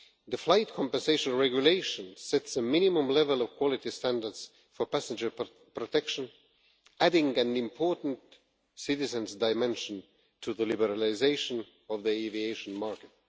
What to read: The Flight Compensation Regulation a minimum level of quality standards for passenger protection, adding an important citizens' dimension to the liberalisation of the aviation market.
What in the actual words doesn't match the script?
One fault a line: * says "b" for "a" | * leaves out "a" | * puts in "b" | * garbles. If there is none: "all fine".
* puts in "sets"